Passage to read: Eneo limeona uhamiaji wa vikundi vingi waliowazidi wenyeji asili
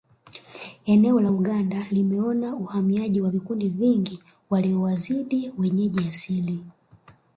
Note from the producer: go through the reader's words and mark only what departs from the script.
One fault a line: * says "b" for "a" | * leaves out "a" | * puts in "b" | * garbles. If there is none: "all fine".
* puts in "la Uganda"